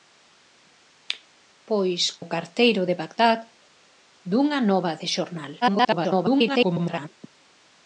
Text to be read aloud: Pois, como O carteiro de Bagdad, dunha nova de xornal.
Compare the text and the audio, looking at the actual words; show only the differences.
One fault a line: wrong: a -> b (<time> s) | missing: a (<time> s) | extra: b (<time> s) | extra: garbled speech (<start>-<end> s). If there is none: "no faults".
missing: como (2.0 s)
extra: garbled speech (5.6-7.1 s)